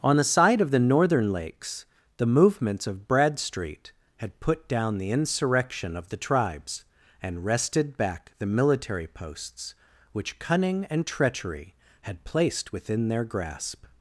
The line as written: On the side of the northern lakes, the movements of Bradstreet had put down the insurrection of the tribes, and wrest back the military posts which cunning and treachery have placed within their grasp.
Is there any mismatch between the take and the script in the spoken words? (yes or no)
yes